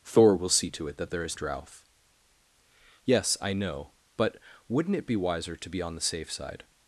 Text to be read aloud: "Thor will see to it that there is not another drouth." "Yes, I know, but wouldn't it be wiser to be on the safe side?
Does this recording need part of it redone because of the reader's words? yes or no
yes